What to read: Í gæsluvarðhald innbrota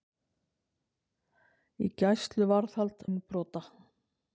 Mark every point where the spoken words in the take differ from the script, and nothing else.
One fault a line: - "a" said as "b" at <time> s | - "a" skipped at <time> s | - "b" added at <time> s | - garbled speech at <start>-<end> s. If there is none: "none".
none